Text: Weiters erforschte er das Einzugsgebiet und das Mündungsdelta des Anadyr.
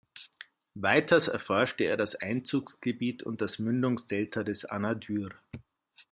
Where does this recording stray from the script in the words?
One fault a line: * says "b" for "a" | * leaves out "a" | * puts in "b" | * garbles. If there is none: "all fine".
all fine